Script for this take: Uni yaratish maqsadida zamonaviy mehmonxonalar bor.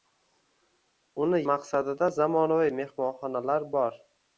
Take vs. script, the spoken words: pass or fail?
fail